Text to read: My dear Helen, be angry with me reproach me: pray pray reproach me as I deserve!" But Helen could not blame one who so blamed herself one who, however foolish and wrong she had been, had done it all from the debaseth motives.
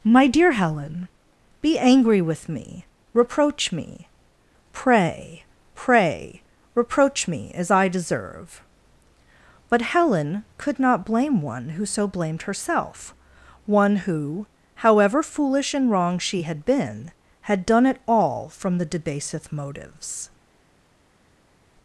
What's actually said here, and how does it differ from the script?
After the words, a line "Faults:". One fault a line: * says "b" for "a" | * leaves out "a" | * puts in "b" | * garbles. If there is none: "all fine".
My dear Helen, be angry with me reproach me: pray pray reproach me as I deserve!" But Helen could not blame one who so blamed herself one who, however foolish and wrong she had been, had done it all from the debaseth motives.
Faults:
all fine